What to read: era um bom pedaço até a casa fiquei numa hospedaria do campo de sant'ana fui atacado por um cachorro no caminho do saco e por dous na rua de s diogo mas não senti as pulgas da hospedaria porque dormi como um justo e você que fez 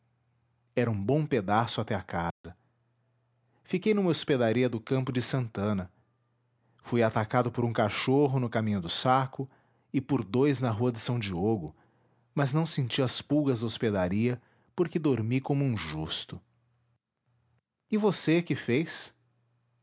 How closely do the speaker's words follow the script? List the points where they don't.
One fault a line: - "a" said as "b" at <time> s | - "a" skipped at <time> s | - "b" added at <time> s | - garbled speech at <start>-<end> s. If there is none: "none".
none